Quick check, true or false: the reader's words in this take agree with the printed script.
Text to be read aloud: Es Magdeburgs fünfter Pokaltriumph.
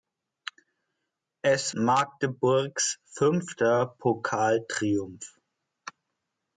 true